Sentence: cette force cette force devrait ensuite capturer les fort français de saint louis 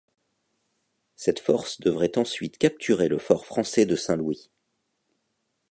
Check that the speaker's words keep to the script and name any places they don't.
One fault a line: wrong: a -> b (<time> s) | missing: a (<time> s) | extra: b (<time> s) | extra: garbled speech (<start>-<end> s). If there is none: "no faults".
missing: cette force (1.8 s)
wrong: les -> le (3.1 s)